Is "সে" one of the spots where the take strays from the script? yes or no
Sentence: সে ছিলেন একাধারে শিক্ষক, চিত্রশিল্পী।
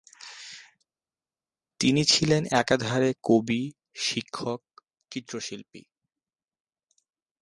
yes